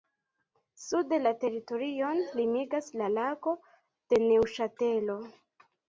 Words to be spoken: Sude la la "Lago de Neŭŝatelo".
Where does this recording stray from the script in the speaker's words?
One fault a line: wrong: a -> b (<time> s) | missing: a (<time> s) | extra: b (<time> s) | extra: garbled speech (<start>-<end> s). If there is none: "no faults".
extra: teritorion limigas (1.4 s)